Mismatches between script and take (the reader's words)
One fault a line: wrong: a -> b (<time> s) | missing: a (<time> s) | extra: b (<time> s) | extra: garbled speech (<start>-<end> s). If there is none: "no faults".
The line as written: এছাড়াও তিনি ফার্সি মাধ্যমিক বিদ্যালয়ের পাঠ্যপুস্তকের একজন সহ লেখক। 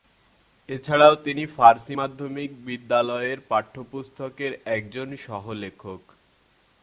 no faults